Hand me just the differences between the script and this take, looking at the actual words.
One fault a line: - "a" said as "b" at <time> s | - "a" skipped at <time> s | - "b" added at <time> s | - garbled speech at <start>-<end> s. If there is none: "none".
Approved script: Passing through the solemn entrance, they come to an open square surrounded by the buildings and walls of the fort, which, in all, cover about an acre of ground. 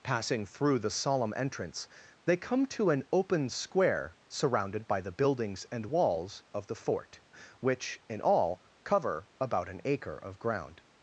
none